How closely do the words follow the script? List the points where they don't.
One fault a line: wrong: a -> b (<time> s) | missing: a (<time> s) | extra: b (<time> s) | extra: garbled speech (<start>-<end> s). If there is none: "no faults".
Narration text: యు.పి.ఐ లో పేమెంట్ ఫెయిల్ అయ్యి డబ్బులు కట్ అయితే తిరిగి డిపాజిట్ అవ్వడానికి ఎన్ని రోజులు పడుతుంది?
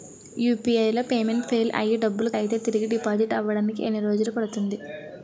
missing: కట్ (2.3 s)